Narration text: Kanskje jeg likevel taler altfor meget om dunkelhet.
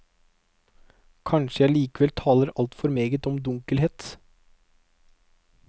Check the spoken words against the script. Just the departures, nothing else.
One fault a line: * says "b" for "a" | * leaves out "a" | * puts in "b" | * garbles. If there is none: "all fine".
all fine